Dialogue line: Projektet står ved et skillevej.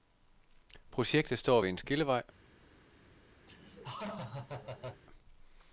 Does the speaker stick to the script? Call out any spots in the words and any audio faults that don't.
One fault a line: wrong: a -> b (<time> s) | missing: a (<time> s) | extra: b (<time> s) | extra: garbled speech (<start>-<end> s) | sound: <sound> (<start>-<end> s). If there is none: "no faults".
wrong: et -> en (1.7 s)
sound: laugh (3.5-5.0 s)